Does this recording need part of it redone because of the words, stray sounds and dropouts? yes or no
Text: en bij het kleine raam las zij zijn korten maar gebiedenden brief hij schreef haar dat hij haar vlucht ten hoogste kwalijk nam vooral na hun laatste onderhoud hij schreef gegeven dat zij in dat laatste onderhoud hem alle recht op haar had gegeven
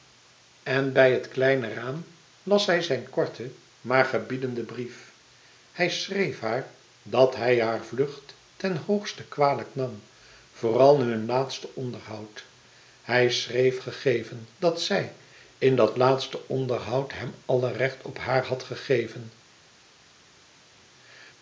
no